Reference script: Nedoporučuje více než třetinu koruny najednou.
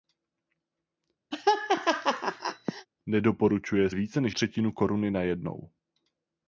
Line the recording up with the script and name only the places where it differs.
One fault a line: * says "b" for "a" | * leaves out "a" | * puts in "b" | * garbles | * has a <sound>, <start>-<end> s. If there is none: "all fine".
* has a laugh, 1.3-2.9 s